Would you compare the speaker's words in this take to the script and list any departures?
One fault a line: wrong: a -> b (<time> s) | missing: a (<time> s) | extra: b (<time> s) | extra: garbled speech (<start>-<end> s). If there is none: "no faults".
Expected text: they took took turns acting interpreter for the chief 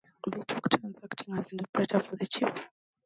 missing: took (0.7 s)
extra: as (1.3 s)